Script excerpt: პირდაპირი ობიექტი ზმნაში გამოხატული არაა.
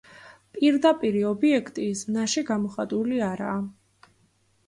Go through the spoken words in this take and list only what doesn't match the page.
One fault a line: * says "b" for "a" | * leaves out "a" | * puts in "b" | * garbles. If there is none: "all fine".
all fine